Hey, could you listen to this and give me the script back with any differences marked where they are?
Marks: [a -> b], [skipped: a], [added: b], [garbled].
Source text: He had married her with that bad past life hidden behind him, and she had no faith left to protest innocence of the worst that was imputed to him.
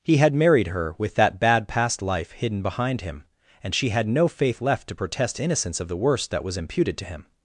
He had married her with that bad past life hidden behind him, and she had no faith left to protest innocence of the worst that was imputed to him.